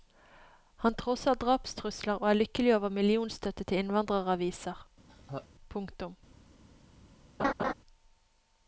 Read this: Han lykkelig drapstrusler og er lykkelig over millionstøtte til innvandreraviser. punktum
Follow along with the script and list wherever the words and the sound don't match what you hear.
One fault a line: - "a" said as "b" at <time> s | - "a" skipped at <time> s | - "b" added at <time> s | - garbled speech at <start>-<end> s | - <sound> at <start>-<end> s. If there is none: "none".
- "lykkelig" said as "trosser" at 1.0 s
- laugh at 5.1-5.5 s
- laugh at 7.4-7.7 s